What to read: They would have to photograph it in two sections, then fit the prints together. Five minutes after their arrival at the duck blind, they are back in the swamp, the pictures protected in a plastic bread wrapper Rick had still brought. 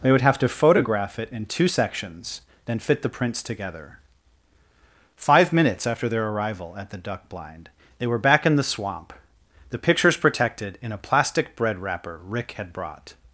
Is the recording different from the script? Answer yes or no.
yes